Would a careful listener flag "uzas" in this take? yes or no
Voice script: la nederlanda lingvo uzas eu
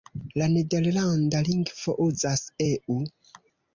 no